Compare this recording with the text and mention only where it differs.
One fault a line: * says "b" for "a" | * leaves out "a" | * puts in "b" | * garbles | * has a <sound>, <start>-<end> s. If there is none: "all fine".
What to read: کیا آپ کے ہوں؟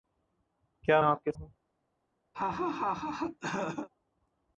* has a laugh, 2.3-3.9 s